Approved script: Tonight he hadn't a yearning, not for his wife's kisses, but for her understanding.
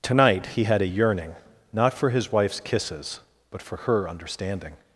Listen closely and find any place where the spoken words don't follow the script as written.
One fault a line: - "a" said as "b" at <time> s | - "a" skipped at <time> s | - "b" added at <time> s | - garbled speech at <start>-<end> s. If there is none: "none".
- "hadn't" said as "had" at 0.6 s